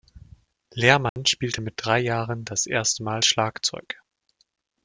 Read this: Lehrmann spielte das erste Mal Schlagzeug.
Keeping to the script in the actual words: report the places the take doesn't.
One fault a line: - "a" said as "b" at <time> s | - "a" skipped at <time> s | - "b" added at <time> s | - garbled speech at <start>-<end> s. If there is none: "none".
- "mit drei Jahren" added at 1.6 s